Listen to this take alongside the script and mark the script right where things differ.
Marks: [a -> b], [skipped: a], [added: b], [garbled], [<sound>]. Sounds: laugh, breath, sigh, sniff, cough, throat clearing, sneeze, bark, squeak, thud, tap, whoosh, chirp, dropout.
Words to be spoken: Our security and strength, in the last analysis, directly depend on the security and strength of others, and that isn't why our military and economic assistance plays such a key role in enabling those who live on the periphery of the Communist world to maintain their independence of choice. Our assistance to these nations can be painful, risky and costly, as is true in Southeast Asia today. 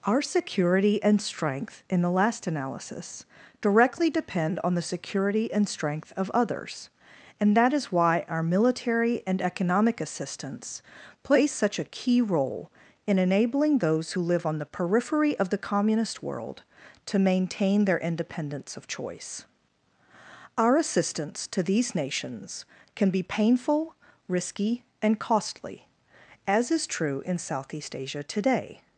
Our security and strength, in the last analysis, directly depend on the security and strength of others, and that [isn't -> is] why our military and economic assistance plays such a key role in enabling those who live on the periphery of the Communist world to maintain their independence of choice. Our assistance to these nations can be painful, risky and costly, as is true in Southeast Asia today.